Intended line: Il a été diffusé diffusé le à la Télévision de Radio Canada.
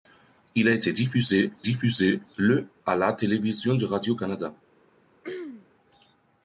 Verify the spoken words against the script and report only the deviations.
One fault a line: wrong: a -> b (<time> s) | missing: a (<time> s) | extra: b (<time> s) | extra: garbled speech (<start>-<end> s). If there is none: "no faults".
no faults